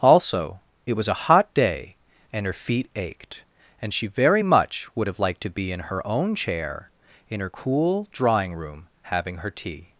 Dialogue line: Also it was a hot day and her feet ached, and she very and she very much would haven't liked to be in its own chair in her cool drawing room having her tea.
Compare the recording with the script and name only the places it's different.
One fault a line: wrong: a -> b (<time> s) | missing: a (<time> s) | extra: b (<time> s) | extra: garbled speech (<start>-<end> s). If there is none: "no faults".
missing: and she very (4.4 s)
wrong: haven't -> have (5.1 s)
wrong: its -> her (5.8 s)